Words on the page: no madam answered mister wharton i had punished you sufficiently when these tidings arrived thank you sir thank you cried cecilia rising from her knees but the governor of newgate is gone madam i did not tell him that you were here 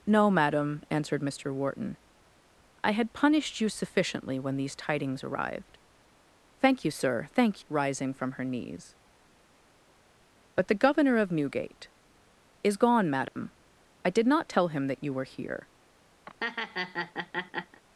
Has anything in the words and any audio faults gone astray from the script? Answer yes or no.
yes